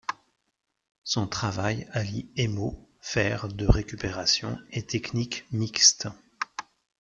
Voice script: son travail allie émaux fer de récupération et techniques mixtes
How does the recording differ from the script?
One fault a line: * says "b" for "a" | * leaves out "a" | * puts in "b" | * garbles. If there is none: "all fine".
all fine